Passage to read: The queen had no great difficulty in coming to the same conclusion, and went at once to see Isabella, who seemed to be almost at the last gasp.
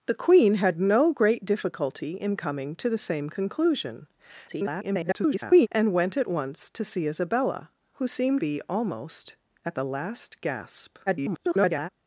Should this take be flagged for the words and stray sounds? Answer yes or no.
yes